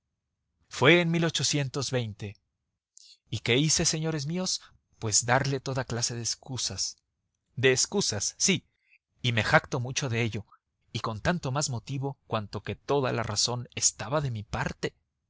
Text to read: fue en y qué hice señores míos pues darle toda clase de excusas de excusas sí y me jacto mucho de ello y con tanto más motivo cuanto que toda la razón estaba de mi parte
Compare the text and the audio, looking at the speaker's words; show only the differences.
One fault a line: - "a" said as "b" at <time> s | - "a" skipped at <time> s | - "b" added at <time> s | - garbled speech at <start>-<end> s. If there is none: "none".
none